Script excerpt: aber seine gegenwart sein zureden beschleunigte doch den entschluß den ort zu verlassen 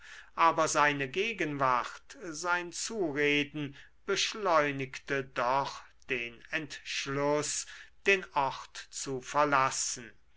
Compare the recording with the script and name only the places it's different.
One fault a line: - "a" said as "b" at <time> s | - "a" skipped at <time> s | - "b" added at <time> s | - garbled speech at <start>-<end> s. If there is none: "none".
none